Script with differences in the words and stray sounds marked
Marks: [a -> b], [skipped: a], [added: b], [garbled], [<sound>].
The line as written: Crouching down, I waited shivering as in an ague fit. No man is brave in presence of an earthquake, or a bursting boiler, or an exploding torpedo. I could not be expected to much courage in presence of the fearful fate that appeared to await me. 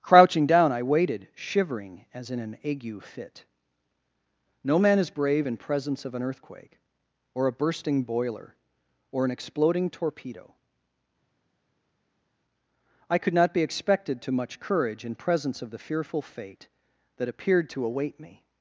Crouching down, I waited shivering as in an ague fit. No man is brave in presence of an earthquake, or a bursting boiler, or an exploding torpedo. I could not be expected to much courage in presence of the fearful fate that appeared to await me.